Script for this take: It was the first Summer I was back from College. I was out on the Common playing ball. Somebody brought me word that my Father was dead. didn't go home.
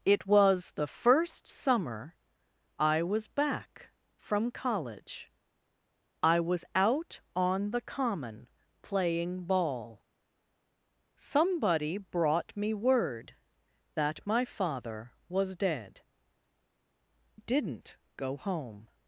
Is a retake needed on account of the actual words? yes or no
no